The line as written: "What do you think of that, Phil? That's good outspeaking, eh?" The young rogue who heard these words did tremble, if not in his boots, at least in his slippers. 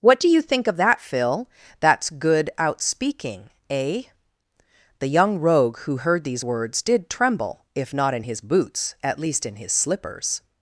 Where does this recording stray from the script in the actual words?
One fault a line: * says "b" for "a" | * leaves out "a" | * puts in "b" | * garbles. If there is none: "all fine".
all fine